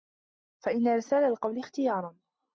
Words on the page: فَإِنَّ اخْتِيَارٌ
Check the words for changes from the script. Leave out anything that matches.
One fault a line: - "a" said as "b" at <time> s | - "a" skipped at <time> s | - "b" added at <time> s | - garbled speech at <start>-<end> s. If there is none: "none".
- "إرْسَالَ الْقَوْلِ" added at 0.9 s